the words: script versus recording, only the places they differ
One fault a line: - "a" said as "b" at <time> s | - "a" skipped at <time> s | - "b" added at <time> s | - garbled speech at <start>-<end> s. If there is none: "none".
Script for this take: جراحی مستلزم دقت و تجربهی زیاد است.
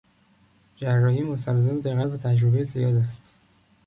none